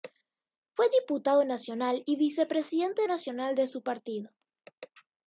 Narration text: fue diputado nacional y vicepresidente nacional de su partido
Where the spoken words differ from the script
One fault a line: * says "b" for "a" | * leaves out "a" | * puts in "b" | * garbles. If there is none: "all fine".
all fine